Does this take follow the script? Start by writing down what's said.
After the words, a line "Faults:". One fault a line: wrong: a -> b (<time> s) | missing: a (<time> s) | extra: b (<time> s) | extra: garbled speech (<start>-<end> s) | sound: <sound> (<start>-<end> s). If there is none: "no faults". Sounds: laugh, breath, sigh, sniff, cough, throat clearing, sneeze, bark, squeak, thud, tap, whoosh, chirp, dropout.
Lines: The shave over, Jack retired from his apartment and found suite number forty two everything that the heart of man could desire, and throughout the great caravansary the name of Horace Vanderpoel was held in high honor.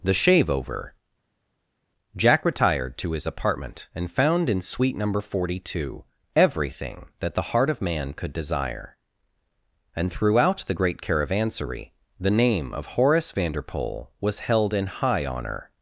The shave over, Jack retired to his apartment and found in suite number forty two everything that the heart of man could desire, and throughout the great caravansary the name of Horace Vanderpoel was held in high honor.
Faults:
wrong: from -> to (3.0 s)
extra: in (4.5 s)